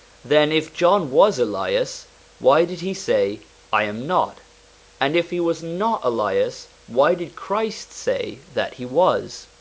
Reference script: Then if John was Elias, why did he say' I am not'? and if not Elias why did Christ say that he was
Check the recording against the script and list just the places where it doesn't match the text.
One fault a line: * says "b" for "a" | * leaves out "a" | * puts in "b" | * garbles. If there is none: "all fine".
* puts in "he was"